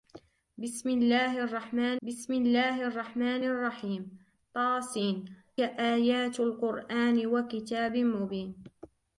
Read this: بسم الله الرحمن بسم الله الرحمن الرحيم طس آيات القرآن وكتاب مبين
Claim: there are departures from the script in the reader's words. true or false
false